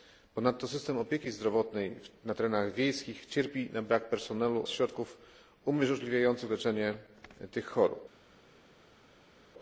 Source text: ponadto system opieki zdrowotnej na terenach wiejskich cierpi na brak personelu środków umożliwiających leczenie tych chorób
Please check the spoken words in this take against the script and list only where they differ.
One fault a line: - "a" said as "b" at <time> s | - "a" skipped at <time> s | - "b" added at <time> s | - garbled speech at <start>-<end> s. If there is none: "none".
none